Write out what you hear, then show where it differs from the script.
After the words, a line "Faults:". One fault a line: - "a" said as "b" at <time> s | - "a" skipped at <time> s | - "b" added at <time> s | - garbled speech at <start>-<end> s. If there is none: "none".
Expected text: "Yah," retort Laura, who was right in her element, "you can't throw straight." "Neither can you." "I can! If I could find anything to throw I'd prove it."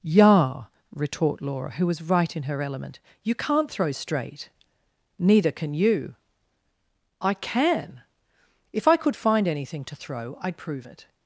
"Yah," retort Laura, who was right in her element, "you can't throw straight." "Neither can you." "I can! If I could find anything to throw I'd prove it."
Faults:
none